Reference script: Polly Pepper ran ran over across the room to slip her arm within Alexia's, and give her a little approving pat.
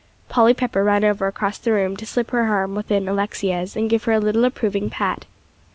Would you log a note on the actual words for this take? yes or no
yes